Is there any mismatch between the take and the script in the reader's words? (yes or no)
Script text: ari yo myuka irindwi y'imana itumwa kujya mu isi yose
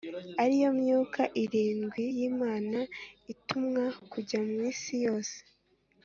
no